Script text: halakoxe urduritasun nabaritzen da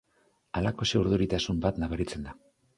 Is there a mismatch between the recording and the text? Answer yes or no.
yes